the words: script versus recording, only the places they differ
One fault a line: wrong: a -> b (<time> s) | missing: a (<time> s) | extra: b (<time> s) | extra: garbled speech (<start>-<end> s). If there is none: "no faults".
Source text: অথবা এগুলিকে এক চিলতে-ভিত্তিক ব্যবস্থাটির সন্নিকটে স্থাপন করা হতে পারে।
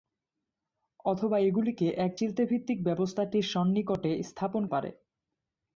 missing: করা হতে (4.6 s)